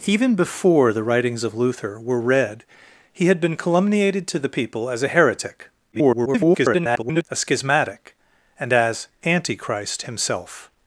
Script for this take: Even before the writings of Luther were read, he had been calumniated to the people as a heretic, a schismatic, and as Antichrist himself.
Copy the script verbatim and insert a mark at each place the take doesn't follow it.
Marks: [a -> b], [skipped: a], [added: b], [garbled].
Even before the writings of Luther were read, he had been calumniated to the people as a heretic, [garbled] a schismatic, and as Antichrist himself.